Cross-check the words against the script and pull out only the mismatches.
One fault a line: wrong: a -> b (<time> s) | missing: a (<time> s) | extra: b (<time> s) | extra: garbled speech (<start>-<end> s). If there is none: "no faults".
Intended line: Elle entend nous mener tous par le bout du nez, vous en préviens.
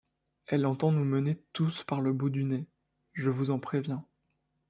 extra: je (3.1 s)